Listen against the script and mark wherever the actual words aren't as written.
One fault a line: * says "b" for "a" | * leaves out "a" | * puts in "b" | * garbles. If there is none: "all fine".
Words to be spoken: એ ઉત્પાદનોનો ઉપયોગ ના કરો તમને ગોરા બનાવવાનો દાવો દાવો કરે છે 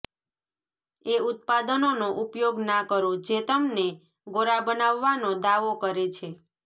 * puts in "જે"
* leaves out "દાવો"